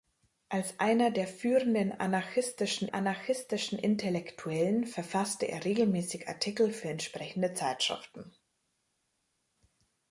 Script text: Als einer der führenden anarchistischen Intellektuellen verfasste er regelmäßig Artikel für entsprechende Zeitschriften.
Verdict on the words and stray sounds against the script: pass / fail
fail